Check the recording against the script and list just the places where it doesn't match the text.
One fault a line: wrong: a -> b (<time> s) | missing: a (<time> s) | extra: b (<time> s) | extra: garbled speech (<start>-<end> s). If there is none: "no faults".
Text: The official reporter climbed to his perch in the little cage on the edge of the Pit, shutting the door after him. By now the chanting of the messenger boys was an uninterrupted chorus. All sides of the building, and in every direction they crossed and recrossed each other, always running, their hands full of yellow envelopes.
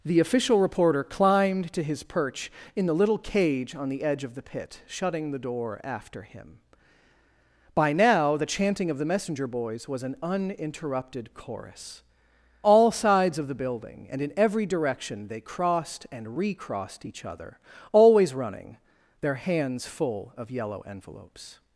no faults